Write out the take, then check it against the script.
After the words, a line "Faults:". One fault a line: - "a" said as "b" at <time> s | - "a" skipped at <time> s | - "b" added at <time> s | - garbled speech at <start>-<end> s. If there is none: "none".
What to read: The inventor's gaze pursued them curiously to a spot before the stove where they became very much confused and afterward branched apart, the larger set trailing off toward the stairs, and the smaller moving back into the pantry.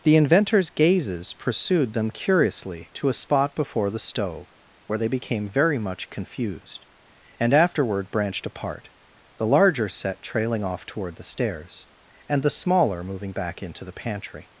The inventor's gazes pursued them curiously to a spot before the stove where they became very much confused and afterward branched apart, the larger set trailing off toward the stairs, and the smaller moving back into the pantry.
Faults:
- "gaze" said as "gazes" at 0.7 s